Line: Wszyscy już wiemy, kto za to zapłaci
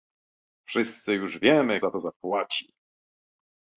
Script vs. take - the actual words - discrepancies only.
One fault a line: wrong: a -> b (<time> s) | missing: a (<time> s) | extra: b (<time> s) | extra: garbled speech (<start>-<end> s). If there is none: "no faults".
missing: kto (1.8 s)